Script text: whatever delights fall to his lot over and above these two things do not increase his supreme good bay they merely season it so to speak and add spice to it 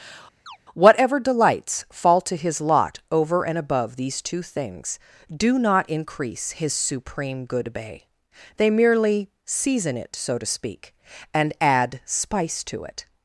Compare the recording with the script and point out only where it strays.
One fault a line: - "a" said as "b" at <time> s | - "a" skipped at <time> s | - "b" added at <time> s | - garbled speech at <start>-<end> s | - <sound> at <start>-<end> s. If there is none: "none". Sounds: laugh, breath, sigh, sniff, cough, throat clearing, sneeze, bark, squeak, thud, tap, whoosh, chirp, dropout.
- chirp at 0.5-0.6 s